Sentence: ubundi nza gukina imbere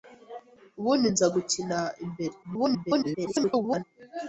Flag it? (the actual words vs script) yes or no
yes